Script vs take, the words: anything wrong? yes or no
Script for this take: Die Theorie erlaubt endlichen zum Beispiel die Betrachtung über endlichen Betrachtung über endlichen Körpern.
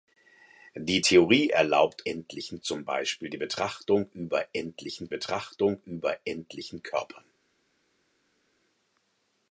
no